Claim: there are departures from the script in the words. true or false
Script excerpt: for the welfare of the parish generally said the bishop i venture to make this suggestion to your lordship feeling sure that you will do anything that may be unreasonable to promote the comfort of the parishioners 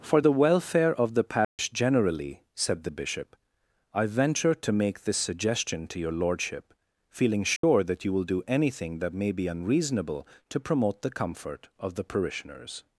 false